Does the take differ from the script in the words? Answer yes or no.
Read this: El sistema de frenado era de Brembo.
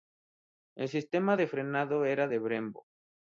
no